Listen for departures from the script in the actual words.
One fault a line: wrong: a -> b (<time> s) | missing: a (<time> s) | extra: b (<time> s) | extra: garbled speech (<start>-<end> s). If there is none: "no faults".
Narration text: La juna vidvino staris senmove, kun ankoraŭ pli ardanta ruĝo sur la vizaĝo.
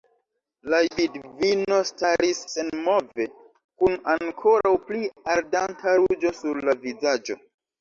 missing: juna (0.8 s)